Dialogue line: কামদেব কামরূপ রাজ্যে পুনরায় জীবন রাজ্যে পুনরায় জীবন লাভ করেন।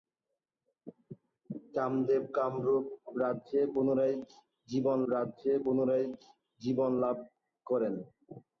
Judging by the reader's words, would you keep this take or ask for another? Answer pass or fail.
pass